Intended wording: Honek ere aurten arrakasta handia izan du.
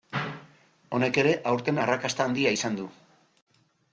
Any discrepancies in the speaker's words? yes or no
no